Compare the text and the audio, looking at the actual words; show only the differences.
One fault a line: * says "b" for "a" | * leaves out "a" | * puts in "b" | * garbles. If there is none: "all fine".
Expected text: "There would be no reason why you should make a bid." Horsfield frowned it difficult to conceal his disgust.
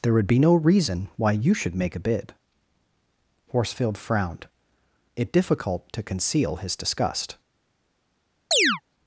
all fine